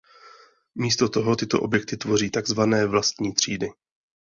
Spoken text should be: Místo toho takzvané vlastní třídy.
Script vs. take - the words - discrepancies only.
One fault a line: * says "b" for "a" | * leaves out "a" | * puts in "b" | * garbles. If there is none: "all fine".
* puts in "tyto objekty tvoří"